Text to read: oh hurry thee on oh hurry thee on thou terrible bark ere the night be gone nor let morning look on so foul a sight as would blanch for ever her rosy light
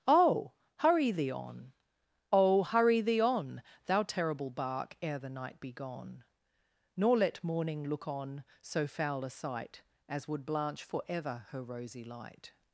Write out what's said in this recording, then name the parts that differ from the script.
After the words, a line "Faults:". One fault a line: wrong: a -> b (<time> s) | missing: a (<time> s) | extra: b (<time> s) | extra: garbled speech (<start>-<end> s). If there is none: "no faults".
oh hurry thee on oh hurry thee on thou terrible bark ere the night be gone nor let morning look on so foul a sight as would blanch for ever her rosy light
Faults:
no faults